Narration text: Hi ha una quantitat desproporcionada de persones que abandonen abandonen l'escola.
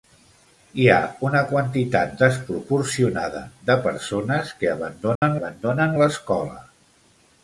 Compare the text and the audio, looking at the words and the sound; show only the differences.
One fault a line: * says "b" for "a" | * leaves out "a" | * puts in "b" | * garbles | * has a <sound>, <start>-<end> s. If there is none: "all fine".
* has a dropout, 5.2-5.2 s